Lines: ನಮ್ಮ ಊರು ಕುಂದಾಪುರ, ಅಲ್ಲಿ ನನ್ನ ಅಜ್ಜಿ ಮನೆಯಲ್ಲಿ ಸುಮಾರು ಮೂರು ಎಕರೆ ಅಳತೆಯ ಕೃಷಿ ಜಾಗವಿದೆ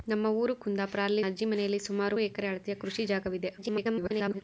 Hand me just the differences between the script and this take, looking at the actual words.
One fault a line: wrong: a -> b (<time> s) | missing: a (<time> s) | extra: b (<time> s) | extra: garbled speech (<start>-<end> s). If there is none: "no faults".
missing: ನನ್ನ (1.2 s)
missing: ಮೂರು (2.2 s)
extra: garbled speech (3.6-4.4 s)